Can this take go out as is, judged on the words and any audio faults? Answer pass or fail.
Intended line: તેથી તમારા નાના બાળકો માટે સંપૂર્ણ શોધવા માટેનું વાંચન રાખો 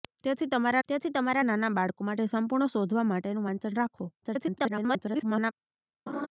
fail